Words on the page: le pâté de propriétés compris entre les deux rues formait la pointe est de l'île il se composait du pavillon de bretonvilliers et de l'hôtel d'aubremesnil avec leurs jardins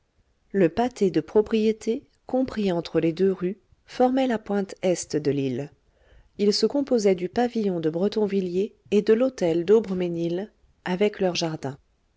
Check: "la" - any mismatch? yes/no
no